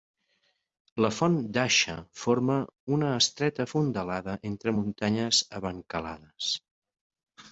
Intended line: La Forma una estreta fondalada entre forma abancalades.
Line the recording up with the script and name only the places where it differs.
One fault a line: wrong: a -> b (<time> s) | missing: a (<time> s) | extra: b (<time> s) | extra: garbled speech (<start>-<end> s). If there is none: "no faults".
extra: Font d'Aixa (1.2 s)
wrong: forma -> muntanyes (4.8 s)